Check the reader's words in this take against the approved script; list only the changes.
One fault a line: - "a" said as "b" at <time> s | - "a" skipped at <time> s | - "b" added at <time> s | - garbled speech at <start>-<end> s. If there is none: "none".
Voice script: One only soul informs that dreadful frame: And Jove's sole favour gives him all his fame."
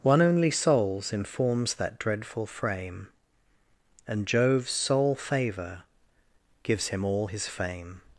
- "soul" said as "souls" at 0.5 s